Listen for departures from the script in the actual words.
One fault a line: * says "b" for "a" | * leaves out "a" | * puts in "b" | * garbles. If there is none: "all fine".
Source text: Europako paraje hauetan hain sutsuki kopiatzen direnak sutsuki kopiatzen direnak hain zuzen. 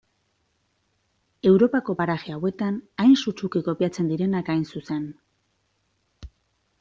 * leaves out "sutsuki kopiatzen direnak"